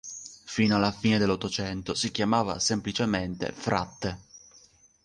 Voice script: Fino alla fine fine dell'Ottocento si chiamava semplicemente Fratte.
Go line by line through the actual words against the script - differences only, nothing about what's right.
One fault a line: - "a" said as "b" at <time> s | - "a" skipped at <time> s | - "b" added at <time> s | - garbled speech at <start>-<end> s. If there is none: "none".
- "fine" skipped at 1.2 s